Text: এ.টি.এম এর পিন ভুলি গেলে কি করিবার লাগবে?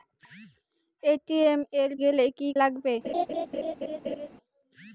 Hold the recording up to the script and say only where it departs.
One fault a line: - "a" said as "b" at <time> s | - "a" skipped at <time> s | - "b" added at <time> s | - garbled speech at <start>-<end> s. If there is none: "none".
- "পিন ভুলি" skipped at 1.9 s
- "করিবার" skipped at 2.5 s